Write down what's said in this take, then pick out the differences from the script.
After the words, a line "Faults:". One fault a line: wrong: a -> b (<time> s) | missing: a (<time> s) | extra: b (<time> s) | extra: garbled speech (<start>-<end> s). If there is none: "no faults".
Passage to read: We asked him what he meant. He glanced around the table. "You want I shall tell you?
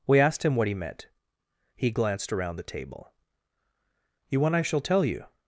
We asked him what he meant. He glanced around the table. "You want I shall tell you?
Faults:
no faults